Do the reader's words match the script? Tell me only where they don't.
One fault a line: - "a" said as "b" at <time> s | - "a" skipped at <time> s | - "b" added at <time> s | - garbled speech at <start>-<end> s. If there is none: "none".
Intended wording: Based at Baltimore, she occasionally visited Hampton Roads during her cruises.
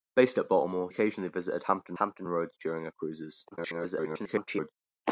- "she" skipped at 0.9 s
- "Hampton" added at 1.9 s
- garbled speech at 3.5-4.7 s